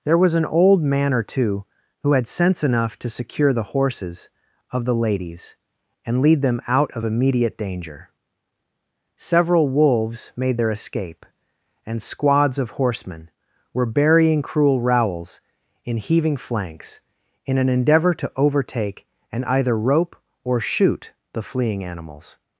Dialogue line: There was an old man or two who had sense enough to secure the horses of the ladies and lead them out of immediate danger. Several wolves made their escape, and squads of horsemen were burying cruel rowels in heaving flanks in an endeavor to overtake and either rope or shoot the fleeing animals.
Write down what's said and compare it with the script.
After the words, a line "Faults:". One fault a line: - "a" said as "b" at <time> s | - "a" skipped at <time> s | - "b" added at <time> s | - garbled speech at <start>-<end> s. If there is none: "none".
There was an old man or two who had sense enough to secure the horses of the ladies and lead them out of immediate danger. Several wolves made their escape, and squads of horsemen were burying cruel rowels in heaving flanks in an endeavor to overtake and either rope or shoot the fleeing animals.
Faults:
none